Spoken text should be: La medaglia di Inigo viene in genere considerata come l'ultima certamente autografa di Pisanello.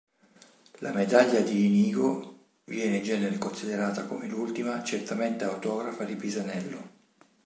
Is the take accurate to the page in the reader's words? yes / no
yes